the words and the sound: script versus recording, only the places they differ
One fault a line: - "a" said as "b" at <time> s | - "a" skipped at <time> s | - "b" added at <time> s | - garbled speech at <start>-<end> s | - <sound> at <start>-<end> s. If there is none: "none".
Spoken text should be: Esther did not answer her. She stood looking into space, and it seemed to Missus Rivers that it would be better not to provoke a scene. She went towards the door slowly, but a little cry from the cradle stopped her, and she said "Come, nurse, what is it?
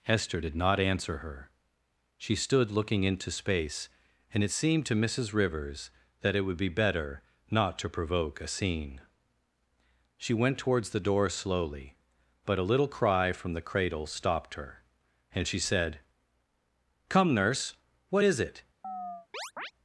- chirp at 18.8-19.7 s